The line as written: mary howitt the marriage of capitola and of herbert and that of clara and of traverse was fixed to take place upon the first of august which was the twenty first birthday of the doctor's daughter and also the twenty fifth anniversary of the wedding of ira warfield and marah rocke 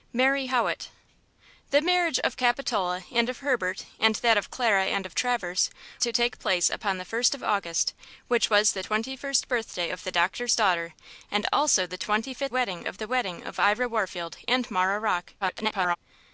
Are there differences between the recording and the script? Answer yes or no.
yes